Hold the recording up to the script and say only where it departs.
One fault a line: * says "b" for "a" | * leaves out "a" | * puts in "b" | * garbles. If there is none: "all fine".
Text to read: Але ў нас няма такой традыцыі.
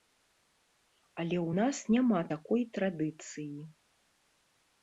all fine